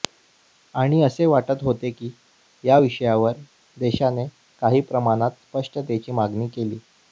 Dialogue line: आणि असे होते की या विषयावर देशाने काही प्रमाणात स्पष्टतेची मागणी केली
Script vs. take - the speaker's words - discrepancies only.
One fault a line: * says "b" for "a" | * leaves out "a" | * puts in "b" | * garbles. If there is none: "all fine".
* puts in "वाटत"